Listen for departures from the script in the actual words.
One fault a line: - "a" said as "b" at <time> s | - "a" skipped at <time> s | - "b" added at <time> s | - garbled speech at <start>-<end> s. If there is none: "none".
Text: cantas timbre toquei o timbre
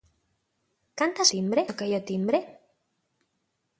none